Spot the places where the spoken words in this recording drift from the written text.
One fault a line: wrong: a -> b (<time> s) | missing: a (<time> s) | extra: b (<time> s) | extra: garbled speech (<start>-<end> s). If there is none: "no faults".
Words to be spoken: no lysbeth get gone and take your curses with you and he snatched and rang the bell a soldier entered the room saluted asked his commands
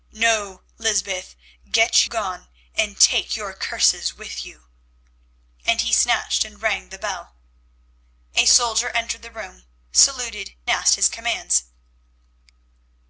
no faults